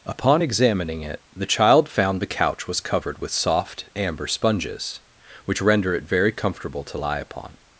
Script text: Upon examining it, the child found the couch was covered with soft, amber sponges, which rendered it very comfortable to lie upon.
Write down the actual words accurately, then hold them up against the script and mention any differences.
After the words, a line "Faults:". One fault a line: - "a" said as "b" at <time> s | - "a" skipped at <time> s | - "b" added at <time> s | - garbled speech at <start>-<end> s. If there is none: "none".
Upon examining it, the child found the couch was covered with soft, amber sponges, which render it very comfortable to lie upon.
Faults:
- "rendered" said as "render" at 5.6 s